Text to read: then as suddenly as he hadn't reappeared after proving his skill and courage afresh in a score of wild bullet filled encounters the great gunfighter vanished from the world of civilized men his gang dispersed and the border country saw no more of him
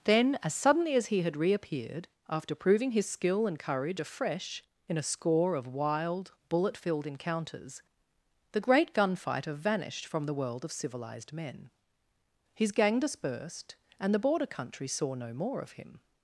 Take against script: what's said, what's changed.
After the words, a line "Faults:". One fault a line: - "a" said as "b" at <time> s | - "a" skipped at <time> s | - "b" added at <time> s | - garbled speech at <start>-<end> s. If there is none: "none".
then as suddenly as he had reappeared after proving his skill and courage afresh in a score of wild bullet filled encounters the great gunfighter vanished from the world of civilized men his gang dispersed and the border country saw no more of him
Faults:
- "hadn't" said as "had" at 1.2 s